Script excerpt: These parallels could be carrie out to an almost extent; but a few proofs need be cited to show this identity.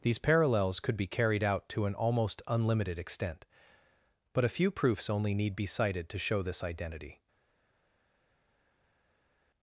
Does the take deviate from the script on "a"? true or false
false